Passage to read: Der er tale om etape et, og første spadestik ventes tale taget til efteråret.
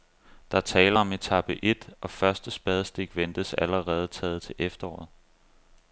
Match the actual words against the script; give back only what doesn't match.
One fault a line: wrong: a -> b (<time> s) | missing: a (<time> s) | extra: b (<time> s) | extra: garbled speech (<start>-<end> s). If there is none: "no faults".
wrong: tale -> allerede (3.5 s)